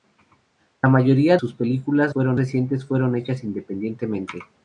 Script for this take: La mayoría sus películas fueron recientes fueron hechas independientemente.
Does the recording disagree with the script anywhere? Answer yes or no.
no